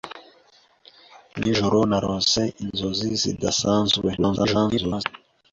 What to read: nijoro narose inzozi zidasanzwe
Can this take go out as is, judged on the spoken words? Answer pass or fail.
fail